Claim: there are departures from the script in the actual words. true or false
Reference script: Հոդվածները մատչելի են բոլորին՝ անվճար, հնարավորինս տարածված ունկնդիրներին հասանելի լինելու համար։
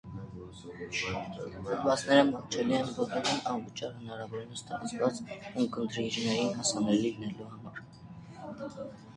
false